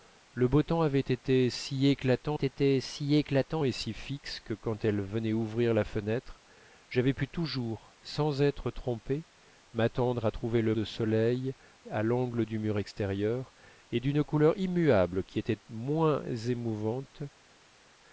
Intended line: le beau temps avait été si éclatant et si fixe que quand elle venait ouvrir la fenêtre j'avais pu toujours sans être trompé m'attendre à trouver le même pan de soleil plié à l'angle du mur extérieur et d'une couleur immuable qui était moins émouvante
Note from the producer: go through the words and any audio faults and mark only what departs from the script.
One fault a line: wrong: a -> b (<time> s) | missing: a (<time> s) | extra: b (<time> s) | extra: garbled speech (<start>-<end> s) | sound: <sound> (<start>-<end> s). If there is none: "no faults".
extra: été si éclatant (2.3 s)
missing: même pan (10.8 s)
missing: plié (11.5 s)